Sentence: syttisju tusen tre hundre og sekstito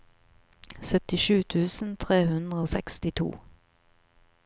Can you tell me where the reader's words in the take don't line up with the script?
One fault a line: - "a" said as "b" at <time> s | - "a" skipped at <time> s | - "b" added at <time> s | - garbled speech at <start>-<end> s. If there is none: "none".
none